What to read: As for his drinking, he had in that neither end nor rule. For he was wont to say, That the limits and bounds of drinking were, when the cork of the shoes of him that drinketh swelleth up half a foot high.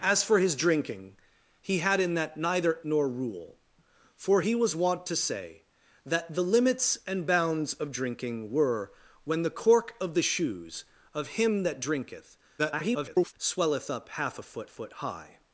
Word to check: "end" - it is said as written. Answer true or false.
false